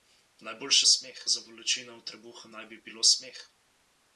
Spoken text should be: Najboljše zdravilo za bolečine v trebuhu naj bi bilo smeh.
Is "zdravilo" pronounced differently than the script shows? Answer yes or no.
yes